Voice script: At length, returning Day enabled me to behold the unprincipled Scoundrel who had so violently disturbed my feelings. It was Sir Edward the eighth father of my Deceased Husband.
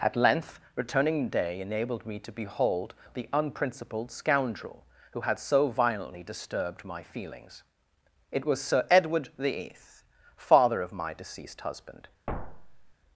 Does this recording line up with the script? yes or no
yes